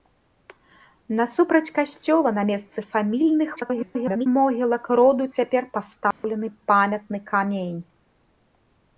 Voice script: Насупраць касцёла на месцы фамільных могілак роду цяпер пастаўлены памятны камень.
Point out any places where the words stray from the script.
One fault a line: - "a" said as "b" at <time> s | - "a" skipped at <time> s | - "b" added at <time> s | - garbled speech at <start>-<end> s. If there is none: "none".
- garbled speech at 3.6-4.3 s